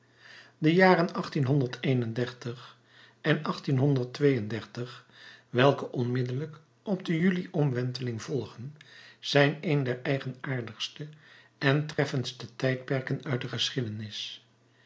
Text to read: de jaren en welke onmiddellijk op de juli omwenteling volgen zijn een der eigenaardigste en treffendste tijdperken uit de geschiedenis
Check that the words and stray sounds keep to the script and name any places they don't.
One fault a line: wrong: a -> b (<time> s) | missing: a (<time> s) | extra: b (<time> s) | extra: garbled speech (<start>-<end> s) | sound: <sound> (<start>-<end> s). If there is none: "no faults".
sound: dropout (11.9-12.0 s)